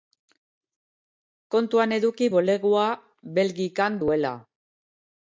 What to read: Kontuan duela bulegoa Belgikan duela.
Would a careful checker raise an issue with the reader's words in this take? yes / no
yes